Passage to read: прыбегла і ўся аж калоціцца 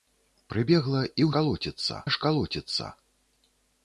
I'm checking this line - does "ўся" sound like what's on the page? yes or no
no